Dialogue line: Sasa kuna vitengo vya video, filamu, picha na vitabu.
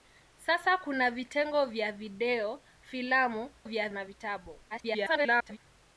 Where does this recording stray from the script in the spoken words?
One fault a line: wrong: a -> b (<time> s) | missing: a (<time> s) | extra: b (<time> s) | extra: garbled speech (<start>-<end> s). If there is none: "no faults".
wrong: picha -> vya (3.6 s)
extra: garbled speech (4.7-5.6 s)